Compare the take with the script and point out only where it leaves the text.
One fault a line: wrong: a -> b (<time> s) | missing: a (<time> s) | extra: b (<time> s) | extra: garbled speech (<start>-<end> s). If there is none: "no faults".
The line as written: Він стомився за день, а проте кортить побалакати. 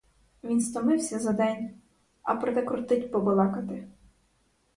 no faults